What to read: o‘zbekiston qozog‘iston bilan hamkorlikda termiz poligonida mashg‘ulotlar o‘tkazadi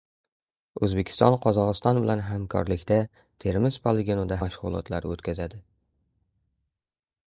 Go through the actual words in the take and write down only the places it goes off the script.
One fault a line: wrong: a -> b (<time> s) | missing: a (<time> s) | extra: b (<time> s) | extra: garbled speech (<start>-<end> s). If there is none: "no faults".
no faults